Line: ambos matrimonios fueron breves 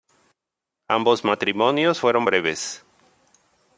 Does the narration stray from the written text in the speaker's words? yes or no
no